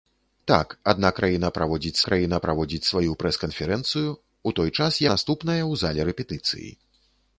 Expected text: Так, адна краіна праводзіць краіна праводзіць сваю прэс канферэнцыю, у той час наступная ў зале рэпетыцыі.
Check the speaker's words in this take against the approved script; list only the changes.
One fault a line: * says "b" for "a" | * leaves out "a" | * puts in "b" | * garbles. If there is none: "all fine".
all fine